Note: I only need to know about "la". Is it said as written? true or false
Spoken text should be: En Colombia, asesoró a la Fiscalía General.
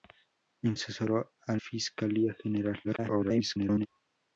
false